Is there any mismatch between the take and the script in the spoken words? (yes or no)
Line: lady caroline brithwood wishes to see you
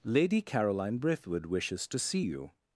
no